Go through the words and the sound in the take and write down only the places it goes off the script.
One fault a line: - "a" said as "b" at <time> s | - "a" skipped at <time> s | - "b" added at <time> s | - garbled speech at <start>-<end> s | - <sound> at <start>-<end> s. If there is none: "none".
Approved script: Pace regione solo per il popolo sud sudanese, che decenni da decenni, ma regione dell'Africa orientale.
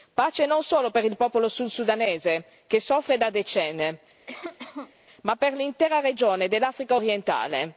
- "regione" said as "non" at 0.5 s
- "decenni" said as "soffre" at 2.8 s
- cough at 4.3-4.9 s
- "per l'intera" added at 5.4 s